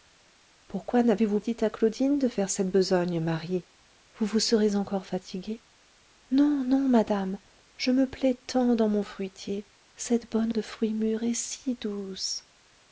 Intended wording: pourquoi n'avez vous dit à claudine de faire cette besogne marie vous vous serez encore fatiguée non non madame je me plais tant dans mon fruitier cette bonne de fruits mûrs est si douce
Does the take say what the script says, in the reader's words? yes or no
yes